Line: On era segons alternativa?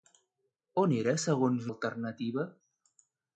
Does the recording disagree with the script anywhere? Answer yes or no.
no